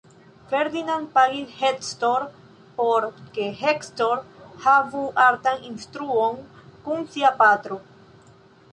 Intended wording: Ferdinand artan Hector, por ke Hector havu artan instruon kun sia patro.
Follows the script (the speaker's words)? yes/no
no